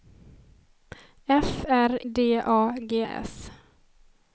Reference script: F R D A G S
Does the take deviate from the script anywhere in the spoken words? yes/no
no